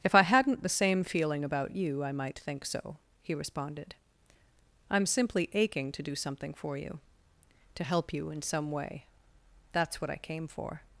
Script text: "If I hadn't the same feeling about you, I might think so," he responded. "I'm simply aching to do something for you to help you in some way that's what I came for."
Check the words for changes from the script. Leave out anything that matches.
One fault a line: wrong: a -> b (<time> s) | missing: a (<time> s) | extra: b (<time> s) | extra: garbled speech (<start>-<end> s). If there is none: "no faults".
no faults